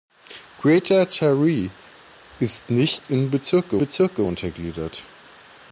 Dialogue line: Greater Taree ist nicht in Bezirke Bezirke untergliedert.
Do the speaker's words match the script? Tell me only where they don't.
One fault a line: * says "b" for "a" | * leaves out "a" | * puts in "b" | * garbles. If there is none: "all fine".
all fine